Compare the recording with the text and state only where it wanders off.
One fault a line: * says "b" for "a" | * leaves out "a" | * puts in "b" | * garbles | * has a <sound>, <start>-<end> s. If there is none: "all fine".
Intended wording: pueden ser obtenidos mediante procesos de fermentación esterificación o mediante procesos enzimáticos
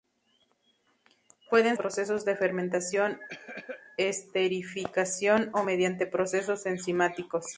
* leaves out "ser obtenidos mediante"
* has a cough, 3.3-3.8 s